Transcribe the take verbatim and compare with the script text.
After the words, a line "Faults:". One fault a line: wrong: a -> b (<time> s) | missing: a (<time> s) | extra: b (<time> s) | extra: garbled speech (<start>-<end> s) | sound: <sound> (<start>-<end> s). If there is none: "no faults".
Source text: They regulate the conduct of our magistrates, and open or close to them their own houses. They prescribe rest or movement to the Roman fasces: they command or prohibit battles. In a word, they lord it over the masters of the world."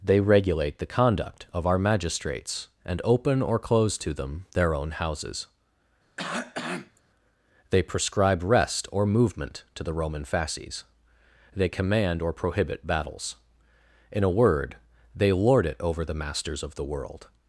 They regulate the conduct of our magistrates, and open or close to them their own houses. They prescribe rest or movement to the Roman fasces: they command or prohibit battles. In a word, they lord it over the masters of the world."
Faults:
sound: cough (6.2-7.0 s)